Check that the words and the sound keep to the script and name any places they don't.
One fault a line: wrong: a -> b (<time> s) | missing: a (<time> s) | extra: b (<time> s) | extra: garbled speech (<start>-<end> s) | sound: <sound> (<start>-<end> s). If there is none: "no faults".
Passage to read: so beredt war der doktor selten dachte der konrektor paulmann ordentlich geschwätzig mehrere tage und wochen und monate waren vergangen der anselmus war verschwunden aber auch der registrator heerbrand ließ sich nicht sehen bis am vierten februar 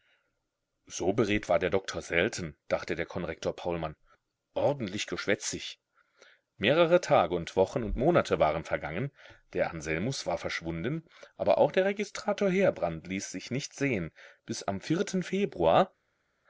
no faults